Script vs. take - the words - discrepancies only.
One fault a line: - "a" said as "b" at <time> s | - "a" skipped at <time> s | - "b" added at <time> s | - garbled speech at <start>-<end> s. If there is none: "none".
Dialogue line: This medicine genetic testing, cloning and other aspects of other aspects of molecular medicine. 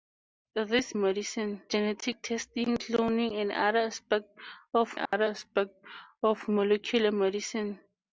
none